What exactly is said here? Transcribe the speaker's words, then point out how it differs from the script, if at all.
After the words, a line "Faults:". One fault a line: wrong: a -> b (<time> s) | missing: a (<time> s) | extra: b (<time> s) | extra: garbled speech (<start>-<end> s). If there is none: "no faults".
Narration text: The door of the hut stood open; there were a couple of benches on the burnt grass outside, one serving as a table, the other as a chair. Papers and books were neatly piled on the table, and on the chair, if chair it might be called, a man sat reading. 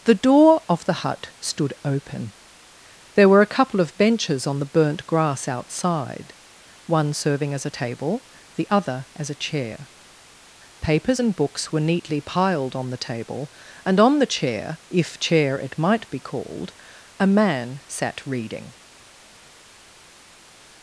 The door of the hut stood open; there were a couple of benches on the burnt grass outside, one serving as a table, the other as a chair. Papers and books were neatly piled on the table, and on the chair, if chair it might be called, a man sat reading.
Faults:
no faults